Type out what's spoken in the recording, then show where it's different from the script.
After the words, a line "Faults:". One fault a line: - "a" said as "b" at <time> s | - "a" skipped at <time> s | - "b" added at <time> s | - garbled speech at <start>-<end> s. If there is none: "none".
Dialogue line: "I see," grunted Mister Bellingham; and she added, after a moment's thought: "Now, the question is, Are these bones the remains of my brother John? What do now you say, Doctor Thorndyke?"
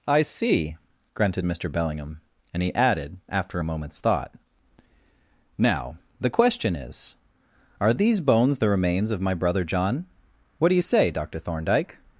"I see," grunted Mister Bellingham; and he added, after a moment's thought: "Now, the question is, Are these bones the remains of my brother John? What do you say, Doctor Thorndyke?"
Faults:
- "she" said as "he" at 2.6 s
- "now" skipped at 10.7 s